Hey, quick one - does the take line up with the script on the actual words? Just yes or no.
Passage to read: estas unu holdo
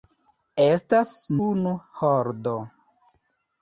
yes